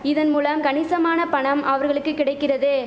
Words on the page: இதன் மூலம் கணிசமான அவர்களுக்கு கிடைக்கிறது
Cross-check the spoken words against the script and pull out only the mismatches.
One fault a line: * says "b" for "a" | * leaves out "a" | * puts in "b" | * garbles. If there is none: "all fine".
* puts in "பணம்"